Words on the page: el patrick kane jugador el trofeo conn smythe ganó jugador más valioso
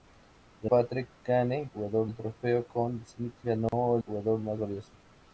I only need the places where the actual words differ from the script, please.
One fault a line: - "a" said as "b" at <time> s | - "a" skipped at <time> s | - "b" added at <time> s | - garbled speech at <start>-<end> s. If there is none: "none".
none